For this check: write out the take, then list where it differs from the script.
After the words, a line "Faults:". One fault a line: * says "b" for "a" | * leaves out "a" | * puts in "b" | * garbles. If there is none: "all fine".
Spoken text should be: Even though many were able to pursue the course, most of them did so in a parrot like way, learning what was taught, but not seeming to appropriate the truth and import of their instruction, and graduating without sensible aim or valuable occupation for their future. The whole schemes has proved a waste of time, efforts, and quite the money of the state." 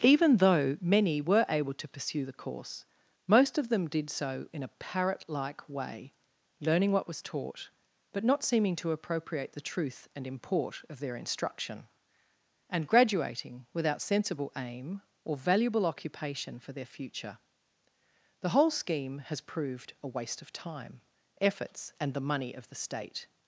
Even though many were able to pursue the course, most of them did so in a parrot like way, learning what was taught, but not seeming to appropriate the truth and import of their instruction, and graduating without sensible aim or valuable occupation for their future. The whole scheme has proved a waste of time, efforts, and the money of the state."
Faults:
* says "scheme" for "schemes"
* leaves out "quite"